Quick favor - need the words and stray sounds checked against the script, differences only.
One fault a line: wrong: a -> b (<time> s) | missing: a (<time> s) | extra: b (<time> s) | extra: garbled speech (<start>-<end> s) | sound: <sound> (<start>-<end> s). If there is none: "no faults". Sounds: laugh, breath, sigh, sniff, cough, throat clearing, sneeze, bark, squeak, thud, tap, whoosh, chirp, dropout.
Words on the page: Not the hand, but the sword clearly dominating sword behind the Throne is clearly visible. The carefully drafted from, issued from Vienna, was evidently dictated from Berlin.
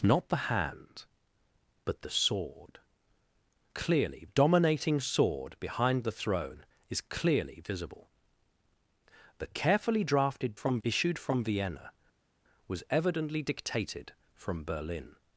no faults